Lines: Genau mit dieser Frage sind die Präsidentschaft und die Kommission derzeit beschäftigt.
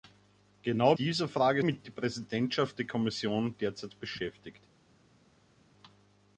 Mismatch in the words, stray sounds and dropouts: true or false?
true